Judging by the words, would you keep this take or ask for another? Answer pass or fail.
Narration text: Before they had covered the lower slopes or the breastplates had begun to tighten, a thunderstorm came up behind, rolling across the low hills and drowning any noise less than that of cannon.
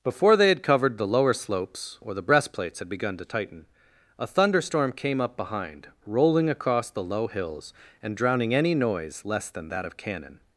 pass